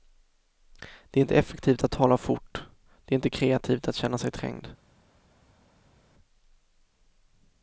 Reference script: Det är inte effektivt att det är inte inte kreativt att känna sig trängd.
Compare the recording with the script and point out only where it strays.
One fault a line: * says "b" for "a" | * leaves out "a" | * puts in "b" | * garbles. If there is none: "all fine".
* puts in "tala fort"
* leaves out "inte"